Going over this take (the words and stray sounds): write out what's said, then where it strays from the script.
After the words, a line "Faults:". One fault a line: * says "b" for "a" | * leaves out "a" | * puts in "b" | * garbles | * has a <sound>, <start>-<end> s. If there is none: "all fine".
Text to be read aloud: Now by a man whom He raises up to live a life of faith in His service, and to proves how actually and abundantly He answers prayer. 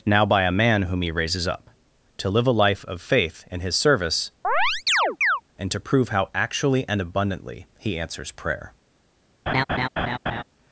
Now by a man whom He raises up to live a life of faith in His service, and to prove how actually and abundantly He answers prayer.
Faults:
* has a chirp, 4.4-5.4 s
* says "prove" for "proves"
* has a laugh, 9.5-10.4 s